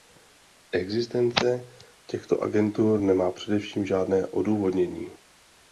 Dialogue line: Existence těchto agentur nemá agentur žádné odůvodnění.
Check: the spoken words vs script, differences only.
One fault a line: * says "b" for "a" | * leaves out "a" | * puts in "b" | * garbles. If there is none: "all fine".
* says "především" for "agentur"